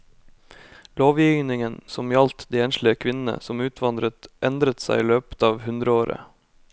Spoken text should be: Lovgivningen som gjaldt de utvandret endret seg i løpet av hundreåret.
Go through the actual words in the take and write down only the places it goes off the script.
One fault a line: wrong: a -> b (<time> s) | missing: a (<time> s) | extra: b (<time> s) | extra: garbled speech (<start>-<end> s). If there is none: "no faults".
extra: enslige kvinnene som (2.7 s)